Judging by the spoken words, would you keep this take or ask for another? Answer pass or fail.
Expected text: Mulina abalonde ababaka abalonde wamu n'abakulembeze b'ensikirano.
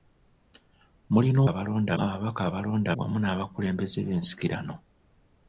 pass